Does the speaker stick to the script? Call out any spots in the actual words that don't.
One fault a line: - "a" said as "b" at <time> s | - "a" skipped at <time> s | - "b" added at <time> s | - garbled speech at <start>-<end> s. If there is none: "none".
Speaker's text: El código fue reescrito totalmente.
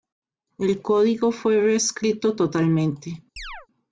none